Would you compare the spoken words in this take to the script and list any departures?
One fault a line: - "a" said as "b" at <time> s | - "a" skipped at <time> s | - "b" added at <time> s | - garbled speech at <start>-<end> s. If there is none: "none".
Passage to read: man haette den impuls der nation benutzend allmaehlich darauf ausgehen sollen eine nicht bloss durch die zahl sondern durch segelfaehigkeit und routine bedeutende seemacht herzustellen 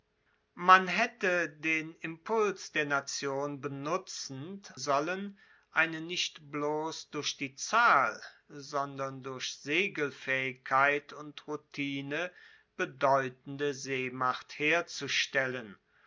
- "allmaehlich darauf ausgehen" skipped at 4.7 s